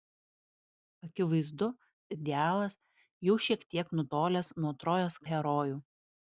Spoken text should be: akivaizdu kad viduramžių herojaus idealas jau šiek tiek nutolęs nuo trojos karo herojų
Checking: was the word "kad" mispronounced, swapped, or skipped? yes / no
yes